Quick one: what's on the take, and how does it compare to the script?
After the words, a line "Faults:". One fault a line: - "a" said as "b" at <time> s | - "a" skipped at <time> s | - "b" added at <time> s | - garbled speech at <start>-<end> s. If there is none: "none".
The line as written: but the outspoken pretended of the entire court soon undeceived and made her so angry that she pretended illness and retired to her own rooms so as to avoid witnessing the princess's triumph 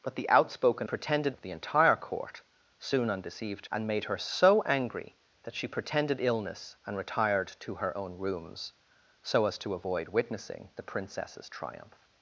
but the outspoken pretended of the entire court soon undeceived and made her so angry that she pretended illness and retired to her own rooms so as to avoid witnessing the princess's triumph
Faults:
none